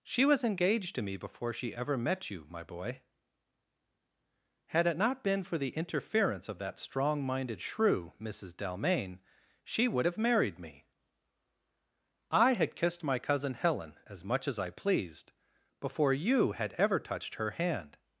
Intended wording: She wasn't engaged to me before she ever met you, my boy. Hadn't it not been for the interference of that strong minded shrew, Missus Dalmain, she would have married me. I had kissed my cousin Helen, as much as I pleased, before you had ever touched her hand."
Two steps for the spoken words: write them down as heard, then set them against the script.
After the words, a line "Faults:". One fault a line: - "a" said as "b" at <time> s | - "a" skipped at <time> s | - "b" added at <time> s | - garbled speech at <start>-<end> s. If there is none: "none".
She was engaged to me before she ever met you, my boy. Had it not been for the interference of that strong minded shrew, Missus Dalmain, she would have married me. I had kissed my cousin Helen, as much as I pleased, before you had ever touched her hand."
Faults:
- "wasn't" said as "was" at 0.2 s
- "Hadn't" said as "Had" at 4.7 s